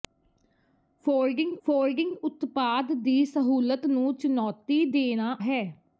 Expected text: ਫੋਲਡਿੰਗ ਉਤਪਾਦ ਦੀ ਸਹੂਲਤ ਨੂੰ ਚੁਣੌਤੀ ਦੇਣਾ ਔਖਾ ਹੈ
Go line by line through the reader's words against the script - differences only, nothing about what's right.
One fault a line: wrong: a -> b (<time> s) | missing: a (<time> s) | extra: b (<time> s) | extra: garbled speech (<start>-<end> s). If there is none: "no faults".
extra: ਫੋਲਡਿੰਗ (1.7 s)
missing: ਔਖਾ (5.4 s)